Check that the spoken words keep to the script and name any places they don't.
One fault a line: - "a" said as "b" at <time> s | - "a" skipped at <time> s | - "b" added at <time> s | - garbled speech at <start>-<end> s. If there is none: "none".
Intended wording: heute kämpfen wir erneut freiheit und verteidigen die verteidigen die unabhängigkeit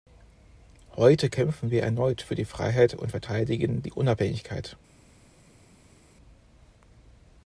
- "für die" added at 2.2 s
- "verteidigen die" skipped at 3.9 s